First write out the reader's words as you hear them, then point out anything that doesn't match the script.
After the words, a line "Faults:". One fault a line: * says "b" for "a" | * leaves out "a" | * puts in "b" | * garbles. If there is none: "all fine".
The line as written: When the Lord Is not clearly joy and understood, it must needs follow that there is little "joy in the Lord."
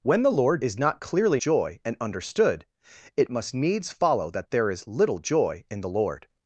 When the Lord Is not clearly joy and understood, it must needs follow that there is little "joy in the Lord."
Faults:
all fine